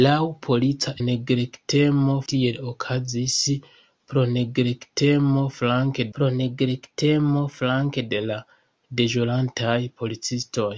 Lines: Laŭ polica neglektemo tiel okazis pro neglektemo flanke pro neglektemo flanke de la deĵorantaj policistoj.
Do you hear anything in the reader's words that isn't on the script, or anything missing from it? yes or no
no